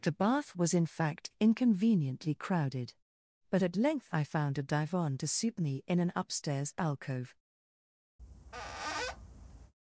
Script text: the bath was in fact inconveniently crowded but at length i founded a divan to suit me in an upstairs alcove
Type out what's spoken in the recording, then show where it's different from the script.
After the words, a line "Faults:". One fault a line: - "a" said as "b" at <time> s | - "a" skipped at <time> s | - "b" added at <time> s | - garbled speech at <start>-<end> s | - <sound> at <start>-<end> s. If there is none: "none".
the bath was in fact inconveniently crowded but at length i found a divan to suit me in an upstairs alcove
Faults:
- "founded" said as "found" at 4.2 s
- squeak at 8.2-9.7 s